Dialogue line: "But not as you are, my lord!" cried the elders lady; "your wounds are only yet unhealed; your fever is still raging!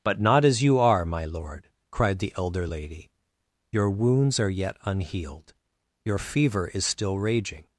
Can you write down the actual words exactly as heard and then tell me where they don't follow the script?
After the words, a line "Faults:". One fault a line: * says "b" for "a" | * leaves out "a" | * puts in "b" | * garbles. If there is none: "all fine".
"But not as you are, my lord!" cried the elder lady; "your wounds are yet unhealed; your fever is still raging!
Faults:
* says "elder" for "elders"
* leaves out "only"